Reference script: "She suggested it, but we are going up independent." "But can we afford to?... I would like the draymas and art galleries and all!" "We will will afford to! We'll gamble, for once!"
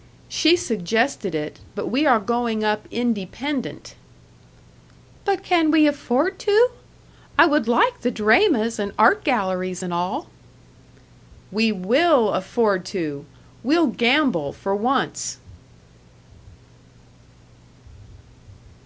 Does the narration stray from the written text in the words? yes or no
yes